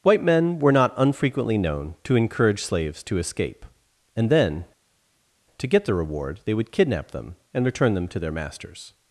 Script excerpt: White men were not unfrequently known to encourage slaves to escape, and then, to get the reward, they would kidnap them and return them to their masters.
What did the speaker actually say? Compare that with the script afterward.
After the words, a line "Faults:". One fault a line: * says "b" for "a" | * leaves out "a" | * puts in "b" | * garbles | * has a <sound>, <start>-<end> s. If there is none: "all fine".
White men were not unfrequently known to encourage slaves to escape, and then, to get the reward, they would kidnap them and return them to their masters.
Faults:
all fine